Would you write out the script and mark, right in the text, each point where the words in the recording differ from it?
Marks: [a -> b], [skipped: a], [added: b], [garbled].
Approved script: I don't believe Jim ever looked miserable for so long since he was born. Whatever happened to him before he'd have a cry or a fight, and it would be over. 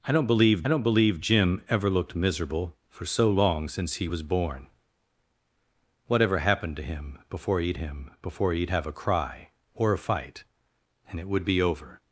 I don't believe [added: don't believe] Jim ever looked miserable for so long since he was born. Whatever happened to him before he'd [added: him before he'd] have a cry or a fight, and it would be over.